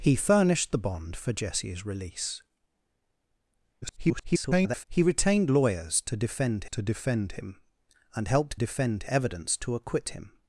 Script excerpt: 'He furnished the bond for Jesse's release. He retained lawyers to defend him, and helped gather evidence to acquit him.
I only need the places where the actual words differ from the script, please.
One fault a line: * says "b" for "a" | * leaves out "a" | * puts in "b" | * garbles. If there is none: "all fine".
* garbles
* puts in "to defend"
* says "defend" for "gather"